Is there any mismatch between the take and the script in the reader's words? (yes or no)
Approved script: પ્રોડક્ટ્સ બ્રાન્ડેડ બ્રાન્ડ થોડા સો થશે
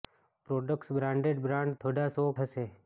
no